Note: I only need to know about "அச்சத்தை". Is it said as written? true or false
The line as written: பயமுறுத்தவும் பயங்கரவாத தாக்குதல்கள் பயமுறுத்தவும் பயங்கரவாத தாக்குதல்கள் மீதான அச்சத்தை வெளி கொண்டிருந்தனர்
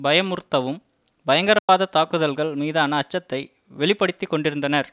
true